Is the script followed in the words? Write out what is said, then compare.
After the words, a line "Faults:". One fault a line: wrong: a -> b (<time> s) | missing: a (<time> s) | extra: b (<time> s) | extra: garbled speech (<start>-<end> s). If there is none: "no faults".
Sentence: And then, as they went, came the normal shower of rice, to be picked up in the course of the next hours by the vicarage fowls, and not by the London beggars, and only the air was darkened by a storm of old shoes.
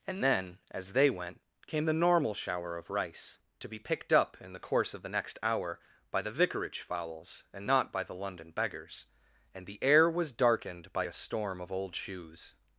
And then, as they went, came the normal shower of rice, to be picked up in the course of the next hour by the vicarage fowls, and not by the London beggars, and the air was darkened by a storm of old shoes.
Faults:
wrong: hours -> hour (5.4 s)
missing: only (9.7 s)